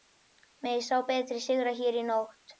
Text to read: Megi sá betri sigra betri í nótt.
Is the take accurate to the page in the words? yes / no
no